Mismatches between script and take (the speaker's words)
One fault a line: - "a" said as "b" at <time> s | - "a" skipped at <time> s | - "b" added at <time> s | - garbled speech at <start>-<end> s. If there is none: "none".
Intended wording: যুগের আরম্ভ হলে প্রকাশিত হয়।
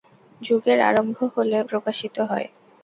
none